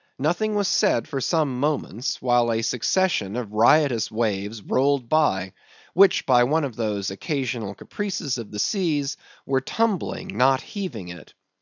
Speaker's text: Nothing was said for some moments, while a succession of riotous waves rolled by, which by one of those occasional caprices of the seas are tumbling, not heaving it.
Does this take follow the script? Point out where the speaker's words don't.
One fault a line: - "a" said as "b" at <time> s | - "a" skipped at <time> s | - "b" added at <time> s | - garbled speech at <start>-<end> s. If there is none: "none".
- "are" said as "were" at 9.5 s